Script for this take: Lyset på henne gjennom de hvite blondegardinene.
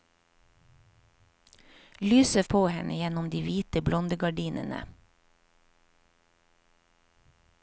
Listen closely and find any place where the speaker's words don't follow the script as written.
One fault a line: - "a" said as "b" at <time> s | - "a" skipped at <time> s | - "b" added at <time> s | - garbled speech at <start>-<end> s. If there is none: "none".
none